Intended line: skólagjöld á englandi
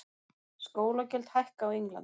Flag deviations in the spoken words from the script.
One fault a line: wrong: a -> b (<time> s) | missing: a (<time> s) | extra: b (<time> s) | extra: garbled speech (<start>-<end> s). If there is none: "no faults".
extra: hækka (1.4 s)